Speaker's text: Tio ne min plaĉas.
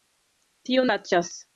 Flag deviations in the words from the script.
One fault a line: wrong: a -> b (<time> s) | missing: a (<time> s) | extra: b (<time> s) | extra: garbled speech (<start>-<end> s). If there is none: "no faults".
missing: ne min (0.9 s)